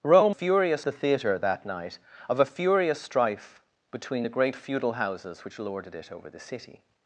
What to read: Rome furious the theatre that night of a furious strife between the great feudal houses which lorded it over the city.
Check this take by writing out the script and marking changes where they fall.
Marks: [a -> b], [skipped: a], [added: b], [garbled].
Rome furious the theatre that night of a furious strife between the great feudal houses which lorded it over the city.